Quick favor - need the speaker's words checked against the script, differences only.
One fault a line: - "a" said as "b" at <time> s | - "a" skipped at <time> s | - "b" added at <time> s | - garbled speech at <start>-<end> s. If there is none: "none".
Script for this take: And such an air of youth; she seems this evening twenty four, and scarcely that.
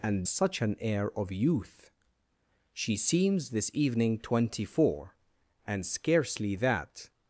none